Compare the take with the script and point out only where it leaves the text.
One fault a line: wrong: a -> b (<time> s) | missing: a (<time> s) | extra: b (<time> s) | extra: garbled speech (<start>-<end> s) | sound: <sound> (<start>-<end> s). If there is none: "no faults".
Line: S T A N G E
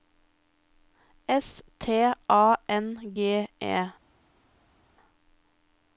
no faults